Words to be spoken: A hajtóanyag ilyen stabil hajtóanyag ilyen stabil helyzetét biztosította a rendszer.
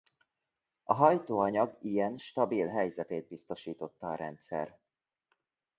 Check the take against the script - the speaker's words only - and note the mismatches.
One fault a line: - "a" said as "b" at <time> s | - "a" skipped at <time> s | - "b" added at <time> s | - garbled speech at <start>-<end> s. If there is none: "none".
- "hajtóanyag ilyen stabil" skipped at 2.7 s